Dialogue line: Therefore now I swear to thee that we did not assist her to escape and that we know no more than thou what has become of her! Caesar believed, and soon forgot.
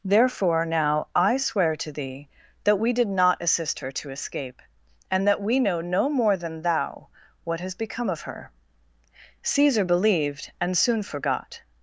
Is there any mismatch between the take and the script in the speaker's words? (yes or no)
no